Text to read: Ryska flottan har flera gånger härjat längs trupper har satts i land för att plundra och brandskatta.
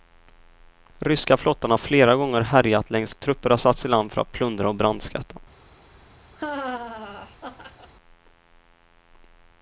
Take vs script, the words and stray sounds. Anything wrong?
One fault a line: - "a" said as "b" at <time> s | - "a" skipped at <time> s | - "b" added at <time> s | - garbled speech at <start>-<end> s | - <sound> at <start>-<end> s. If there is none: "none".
- laugh at 6.4-7.9 s